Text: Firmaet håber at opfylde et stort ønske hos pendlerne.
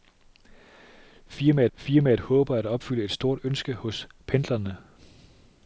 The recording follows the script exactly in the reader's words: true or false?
false